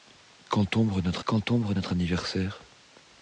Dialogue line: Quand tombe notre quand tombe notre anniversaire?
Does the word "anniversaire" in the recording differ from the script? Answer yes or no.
no